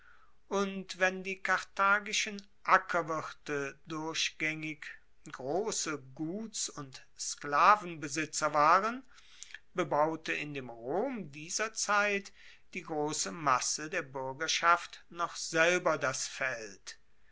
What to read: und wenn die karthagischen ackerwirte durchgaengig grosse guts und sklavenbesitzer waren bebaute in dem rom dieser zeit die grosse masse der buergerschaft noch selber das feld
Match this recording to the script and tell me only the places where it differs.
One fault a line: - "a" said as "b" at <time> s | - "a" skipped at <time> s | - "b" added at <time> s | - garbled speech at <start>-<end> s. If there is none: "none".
none